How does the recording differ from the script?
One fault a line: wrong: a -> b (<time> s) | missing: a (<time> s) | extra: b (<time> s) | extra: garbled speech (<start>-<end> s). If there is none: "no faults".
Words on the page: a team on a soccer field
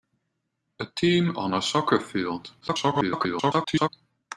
extra: garbled speech (2.6-3.9 s)